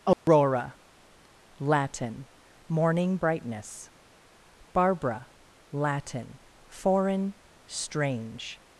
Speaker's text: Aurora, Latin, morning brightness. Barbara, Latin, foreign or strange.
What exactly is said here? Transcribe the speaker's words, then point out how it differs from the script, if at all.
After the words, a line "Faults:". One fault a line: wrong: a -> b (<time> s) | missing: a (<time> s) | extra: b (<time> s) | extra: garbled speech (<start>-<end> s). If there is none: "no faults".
Aurora, Latin, morning brightness. Barbara, Latin, foreign strange.
Faults:
missing: or (7.3 s)